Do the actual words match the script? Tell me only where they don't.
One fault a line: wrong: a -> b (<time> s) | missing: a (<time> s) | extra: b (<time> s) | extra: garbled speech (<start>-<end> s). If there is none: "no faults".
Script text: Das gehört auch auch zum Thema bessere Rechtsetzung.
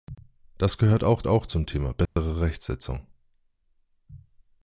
no faults